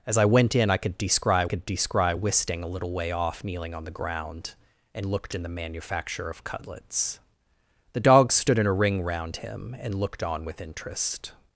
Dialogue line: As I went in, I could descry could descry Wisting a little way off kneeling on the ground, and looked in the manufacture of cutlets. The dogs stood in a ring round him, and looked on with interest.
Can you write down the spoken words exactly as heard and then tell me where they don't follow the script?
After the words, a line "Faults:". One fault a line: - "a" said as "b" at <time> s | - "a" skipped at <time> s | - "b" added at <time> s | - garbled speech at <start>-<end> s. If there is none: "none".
As I went in, I could descry could descry Wisting a little way off kneeling on the ground, and looked in the manufacture of cutlets. The dogs stood in a ring round him, and looked on with interest.
Faults:
none